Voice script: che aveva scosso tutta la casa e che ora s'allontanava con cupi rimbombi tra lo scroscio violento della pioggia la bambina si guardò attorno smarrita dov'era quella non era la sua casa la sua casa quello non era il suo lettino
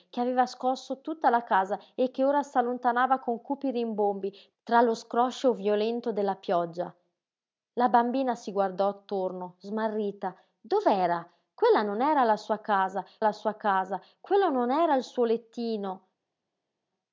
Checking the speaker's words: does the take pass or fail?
pass